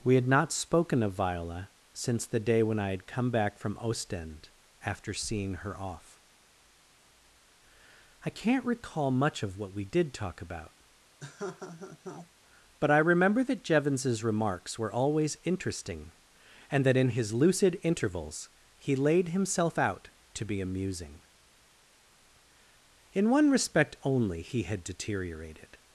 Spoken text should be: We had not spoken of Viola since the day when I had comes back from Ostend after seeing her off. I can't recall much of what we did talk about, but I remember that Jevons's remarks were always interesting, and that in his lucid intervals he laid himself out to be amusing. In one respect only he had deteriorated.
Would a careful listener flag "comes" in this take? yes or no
yes